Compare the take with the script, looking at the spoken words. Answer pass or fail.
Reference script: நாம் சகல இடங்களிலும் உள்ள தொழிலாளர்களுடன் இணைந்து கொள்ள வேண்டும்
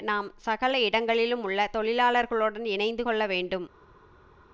pass